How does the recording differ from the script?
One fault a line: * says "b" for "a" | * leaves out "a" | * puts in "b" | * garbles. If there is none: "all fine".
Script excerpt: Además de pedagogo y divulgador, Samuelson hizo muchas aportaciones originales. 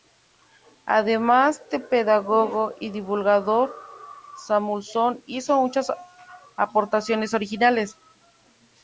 all fine